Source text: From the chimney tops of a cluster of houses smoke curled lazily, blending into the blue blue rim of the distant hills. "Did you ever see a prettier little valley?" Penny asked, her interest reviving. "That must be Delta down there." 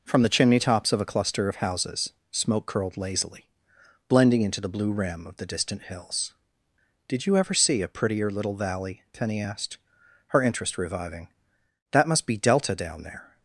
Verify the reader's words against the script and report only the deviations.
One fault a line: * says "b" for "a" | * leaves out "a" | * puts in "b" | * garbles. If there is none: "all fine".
* leaves out "blue"